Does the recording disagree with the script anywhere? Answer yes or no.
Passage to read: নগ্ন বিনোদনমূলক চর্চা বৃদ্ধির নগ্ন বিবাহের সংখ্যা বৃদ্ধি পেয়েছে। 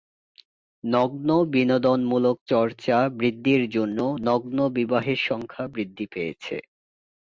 yes